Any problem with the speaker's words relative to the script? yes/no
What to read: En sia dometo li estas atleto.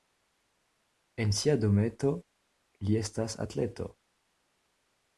no